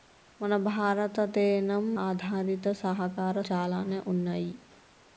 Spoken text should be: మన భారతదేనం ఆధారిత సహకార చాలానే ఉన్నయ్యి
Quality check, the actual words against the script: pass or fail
pass